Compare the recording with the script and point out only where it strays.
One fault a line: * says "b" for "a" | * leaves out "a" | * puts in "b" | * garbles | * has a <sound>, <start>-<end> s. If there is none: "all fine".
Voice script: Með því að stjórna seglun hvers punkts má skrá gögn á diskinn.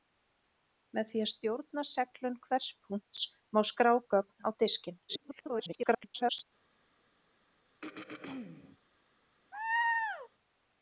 * garbles
* has a throat clearing, 7.8-8.8 s
* has a laugh, 9.5-10.3 s